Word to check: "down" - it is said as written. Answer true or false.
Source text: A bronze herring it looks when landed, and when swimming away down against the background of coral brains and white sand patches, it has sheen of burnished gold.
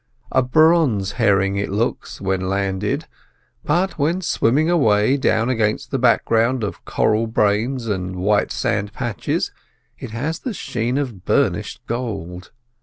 true